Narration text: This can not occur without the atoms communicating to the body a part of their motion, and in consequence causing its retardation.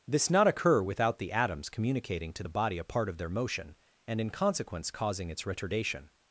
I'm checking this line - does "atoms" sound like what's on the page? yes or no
yes